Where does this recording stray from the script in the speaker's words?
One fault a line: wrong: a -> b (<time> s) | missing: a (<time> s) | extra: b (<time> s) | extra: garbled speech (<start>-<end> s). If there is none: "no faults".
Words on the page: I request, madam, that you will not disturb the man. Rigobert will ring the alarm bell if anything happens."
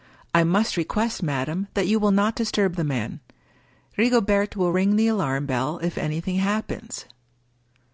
extra: must (0.4 s)